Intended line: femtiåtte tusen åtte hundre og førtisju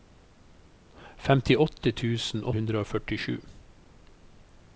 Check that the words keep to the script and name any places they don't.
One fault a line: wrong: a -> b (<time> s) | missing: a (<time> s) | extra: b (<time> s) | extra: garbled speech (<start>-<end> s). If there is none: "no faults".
missing: åtte (2.5 s)